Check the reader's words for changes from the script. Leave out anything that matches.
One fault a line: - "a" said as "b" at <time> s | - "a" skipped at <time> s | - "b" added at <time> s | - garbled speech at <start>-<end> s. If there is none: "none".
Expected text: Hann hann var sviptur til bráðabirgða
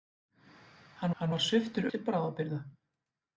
none